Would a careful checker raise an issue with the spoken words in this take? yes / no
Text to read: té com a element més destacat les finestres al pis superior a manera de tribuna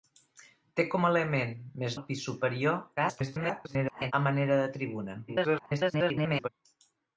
yes